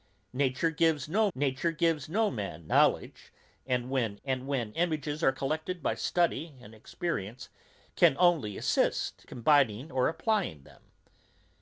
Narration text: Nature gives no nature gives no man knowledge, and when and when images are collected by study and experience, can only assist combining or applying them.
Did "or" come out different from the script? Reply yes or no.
no